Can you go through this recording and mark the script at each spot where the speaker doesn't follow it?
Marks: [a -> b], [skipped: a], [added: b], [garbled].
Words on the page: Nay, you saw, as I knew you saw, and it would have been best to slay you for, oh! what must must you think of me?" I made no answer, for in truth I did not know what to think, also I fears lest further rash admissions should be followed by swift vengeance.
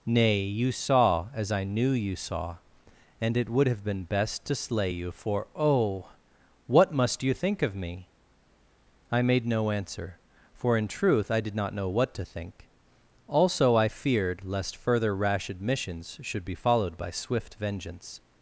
Nay, you saw, as I knew you saw, and it would have been best to slay you for, oh! what must [skipped: must] you think of me?" I made no answer, for in truth I did not know what to think, also I [fears -> feared] lest further rash admissions should be followed by swift vengeance.